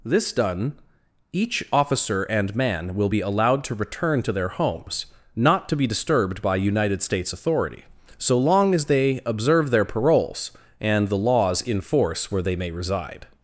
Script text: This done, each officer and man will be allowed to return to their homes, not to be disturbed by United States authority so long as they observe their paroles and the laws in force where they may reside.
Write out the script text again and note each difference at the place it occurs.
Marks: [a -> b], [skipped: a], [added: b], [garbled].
This done, each officer and man will be allowed to return to their homes, not to be disturbed by United States authority so long as they observe their paroles and the laws in force where they may reside.